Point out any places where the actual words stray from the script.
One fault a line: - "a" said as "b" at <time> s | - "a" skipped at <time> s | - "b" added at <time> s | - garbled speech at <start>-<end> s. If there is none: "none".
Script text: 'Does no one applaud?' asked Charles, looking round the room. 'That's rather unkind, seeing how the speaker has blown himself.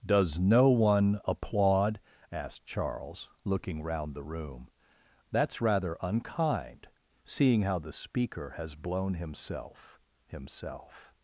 - "himself" added at 10.3 s